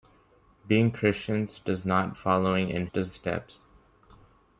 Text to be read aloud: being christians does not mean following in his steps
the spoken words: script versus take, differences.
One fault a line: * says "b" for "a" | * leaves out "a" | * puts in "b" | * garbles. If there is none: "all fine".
* leaves out "mean"
* says "does" for "his"